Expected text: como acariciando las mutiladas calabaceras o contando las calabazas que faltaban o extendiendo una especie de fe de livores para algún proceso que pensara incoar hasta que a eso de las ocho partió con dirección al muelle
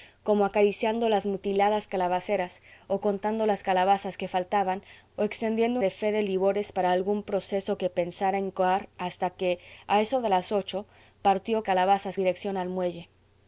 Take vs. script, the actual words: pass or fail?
fail